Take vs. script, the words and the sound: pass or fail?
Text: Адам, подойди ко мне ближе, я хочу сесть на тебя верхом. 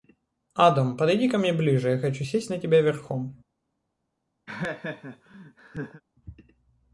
fail